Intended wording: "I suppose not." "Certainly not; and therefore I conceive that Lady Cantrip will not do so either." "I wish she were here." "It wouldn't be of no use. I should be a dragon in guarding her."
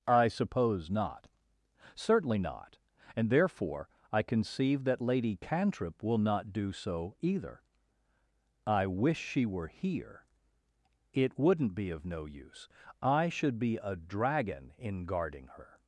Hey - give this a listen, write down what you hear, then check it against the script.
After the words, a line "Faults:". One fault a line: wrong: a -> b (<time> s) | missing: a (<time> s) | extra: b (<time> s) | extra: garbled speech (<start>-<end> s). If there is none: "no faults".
"I suppose not." "Certainly not; and therefore I conceive that Lady Cantrip will not do so either." "I wish she were here." "It wouldn't be of no use. I should be a dragon in guarding her."
Faults:
no faults